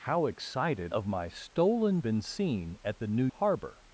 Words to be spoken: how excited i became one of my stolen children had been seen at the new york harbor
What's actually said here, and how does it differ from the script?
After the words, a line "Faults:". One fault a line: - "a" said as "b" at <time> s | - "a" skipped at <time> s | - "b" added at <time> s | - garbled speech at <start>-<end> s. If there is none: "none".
how excited of my stolen been seen at the new harbor
Faults:
- "i became one" skipped at 0.9 s
- "children had" skipped at 2.0 s
- "york" skipped at 3.3 s